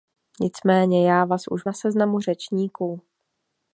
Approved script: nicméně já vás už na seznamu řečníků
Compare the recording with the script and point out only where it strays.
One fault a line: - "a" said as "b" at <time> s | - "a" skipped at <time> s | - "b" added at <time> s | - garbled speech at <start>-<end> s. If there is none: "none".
none